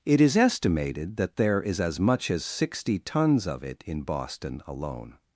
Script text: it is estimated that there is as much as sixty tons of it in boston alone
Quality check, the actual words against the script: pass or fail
pass